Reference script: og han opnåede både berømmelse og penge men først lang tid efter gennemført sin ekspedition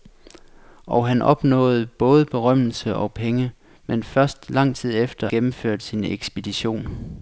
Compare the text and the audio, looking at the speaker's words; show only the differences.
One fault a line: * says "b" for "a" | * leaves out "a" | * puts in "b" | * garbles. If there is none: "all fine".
all fine